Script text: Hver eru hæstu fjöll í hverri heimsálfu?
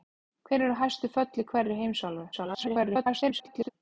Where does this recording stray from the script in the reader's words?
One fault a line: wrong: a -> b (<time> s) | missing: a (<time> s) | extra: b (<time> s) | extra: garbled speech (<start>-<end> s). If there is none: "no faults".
extra: garbled speech (2.3-3.7 s)